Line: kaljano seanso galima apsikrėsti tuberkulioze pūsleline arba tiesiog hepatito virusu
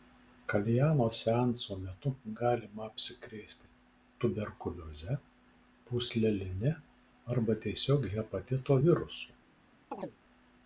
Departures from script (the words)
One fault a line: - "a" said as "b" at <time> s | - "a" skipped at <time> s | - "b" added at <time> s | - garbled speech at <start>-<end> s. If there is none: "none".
- "metu" added at 1.8 s